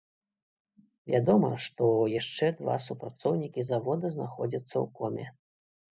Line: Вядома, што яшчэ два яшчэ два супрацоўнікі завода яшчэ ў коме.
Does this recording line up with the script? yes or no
no